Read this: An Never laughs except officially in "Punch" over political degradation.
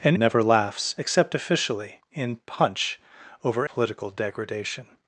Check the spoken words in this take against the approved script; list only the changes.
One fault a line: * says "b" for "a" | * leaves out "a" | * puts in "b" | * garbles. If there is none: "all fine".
all fine